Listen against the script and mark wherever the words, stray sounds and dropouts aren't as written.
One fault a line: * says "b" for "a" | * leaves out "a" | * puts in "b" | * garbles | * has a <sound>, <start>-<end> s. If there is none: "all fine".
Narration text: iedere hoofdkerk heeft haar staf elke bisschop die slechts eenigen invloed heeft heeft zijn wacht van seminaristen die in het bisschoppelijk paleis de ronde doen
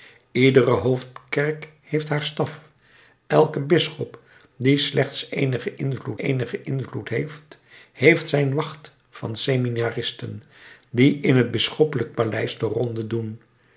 * puts in "eenigen invloed"